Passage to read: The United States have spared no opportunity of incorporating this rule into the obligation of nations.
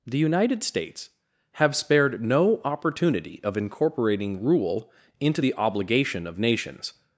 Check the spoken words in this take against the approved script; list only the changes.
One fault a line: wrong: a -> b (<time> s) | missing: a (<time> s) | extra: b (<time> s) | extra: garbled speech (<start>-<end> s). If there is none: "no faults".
missing: this (4.4 s)